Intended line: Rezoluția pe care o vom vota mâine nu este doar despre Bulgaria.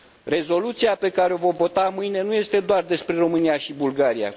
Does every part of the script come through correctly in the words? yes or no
no